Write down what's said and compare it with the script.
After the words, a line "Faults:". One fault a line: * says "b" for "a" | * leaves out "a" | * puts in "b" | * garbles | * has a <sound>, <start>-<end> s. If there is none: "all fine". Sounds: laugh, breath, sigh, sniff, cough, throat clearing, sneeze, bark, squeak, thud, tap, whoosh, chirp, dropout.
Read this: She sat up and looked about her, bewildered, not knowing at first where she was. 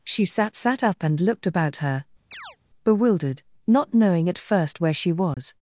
She sat sat up and looked about her, bewildered, not knowing at first where she was.
Faults:
* puts in "sat"
* has a chirp, 2.3-2.6 s
* has a dropout, 5.3-5.4 s